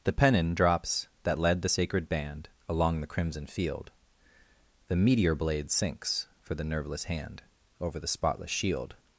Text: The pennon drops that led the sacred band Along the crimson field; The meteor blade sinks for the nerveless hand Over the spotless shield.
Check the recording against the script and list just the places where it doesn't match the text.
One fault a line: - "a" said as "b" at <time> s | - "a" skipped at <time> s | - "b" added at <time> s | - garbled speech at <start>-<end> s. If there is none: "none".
none